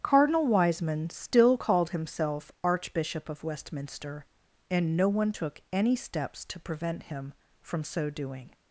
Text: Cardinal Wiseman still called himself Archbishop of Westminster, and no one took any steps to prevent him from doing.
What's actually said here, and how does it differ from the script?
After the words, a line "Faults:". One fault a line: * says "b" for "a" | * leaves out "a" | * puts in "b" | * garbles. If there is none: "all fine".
Cardinal Wiseman still called himself Archbishop of Westminster, and no one took any steps to prevent him from so doing.
Faults:
* puts in "so"